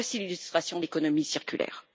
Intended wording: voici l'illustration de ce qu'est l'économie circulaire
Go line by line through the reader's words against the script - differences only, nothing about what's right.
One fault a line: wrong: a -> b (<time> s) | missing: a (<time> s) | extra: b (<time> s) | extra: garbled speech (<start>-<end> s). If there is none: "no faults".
missing: de ce qu'est (0.8 s)